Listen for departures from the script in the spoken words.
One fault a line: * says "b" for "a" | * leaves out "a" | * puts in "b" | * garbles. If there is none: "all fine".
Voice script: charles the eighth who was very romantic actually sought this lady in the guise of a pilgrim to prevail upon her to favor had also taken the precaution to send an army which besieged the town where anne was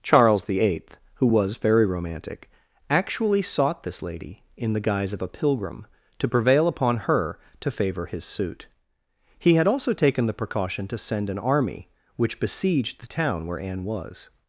* puts in "his suit he"